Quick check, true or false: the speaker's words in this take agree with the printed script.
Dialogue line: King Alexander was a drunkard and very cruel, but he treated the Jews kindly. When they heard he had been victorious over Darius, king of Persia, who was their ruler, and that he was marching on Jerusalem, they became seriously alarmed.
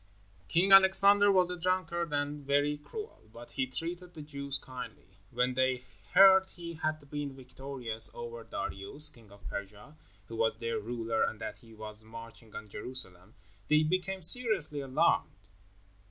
true